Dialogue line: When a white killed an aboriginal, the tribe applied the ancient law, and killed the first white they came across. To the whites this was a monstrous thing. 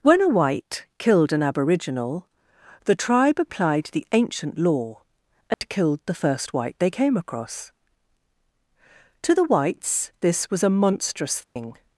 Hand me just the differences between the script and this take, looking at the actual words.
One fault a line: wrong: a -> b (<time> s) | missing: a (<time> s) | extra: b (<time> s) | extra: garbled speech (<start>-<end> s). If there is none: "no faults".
no faults